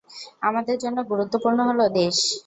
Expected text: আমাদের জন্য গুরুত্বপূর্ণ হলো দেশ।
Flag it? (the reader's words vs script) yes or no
no